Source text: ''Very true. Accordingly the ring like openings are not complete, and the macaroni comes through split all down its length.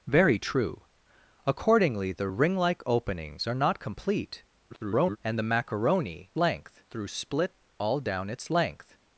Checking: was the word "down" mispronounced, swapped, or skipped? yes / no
no